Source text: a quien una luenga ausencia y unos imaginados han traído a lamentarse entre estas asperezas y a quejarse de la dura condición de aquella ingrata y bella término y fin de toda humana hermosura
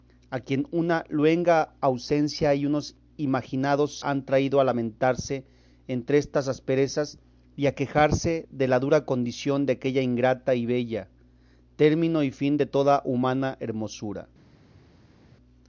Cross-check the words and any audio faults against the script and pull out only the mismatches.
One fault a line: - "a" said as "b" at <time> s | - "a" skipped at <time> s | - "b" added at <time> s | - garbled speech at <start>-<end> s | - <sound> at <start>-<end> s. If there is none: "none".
none